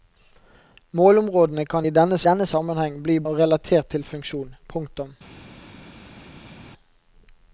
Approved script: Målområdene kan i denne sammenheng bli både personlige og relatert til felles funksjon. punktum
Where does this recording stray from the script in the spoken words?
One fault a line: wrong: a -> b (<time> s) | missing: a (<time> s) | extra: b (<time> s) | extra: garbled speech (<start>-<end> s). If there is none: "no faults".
extra: denne (2.3 s)
missing: både personlige (3.2 s)
missing: felles (4.1 s)